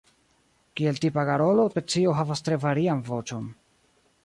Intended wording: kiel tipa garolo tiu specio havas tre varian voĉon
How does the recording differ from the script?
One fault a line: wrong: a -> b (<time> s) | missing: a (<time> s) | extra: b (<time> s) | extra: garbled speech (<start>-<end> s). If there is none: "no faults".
missing: tiu (1.7 s)